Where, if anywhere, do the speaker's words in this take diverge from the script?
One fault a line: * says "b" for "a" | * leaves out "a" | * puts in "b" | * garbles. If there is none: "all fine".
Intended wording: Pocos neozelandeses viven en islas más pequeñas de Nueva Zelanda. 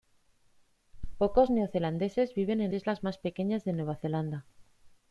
all fine